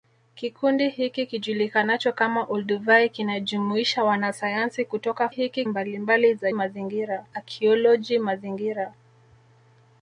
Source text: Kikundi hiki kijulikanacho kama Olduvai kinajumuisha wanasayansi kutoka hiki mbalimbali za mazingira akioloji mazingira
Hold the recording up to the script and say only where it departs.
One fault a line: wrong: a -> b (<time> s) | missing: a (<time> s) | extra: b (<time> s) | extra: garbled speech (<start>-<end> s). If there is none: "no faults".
no faults